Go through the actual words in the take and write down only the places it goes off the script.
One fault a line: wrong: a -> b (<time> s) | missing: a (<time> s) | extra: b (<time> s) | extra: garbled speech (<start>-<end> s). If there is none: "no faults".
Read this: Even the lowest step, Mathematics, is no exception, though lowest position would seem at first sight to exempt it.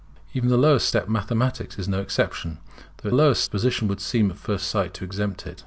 no faults